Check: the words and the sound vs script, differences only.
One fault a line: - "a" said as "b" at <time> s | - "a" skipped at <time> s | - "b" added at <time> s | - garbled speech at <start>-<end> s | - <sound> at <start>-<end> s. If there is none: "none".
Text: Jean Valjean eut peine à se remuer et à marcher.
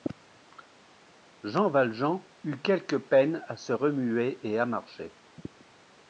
- "quelque" added at 2.6 s